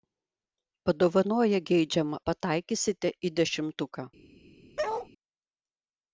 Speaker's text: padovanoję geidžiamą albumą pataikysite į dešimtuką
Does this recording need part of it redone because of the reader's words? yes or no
yes